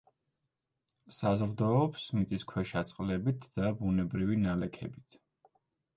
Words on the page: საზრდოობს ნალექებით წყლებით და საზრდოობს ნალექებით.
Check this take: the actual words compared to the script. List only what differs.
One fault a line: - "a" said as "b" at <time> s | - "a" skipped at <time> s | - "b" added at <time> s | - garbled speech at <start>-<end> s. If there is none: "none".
- "ნალექებით" said as "მიწისქვეშა" at 2.2 s
- "საზრდოობს" said as "ბუნებრივი" at 3.8 s